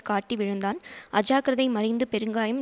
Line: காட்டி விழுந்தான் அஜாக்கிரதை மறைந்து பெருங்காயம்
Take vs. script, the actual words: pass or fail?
pass